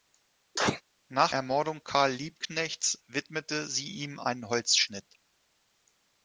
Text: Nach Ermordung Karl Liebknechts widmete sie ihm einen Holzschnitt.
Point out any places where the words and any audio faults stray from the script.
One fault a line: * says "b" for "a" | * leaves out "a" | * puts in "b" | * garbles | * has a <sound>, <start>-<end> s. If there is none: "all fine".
* has a sneeze, 0.5-0.8 s